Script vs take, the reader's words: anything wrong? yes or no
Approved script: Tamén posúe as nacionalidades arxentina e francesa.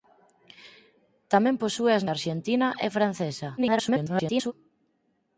yes